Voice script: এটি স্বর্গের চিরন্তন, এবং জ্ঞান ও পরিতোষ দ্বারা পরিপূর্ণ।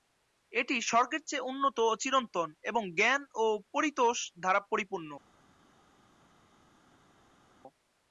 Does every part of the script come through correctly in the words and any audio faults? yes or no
no